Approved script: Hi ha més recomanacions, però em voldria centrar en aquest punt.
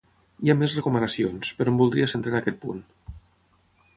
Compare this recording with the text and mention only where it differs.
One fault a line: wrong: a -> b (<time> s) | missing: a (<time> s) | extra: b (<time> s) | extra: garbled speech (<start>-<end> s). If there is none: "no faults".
no faults